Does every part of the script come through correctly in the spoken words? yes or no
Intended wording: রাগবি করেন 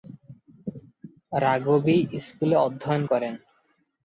no